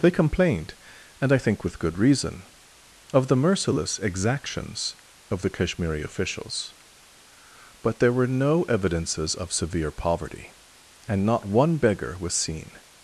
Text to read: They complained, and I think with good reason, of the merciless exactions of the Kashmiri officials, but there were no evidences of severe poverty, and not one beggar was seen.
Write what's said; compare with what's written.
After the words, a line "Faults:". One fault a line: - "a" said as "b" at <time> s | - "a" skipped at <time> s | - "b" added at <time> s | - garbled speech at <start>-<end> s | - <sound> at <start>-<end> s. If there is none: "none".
They complained, and I think with good reason, of the merciless exactions of the Kashmiri officials, but there were no evidences of severe poverty, and not one beggar was seen.
Faults:
none